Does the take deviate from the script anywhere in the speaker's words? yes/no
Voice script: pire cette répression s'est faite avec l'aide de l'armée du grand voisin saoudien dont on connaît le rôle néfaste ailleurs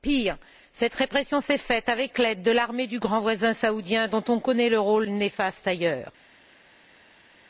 no